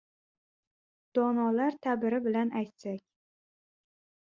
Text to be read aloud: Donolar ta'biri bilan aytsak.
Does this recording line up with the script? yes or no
yes